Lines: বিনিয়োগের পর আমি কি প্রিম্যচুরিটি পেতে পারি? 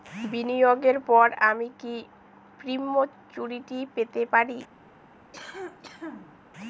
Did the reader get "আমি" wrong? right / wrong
right